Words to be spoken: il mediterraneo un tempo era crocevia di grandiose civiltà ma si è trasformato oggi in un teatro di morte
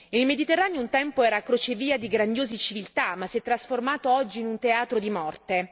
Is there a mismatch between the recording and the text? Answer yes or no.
no